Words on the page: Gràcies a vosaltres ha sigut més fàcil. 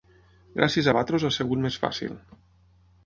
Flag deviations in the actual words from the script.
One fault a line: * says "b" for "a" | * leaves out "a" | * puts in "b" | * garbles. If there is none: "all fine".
all fine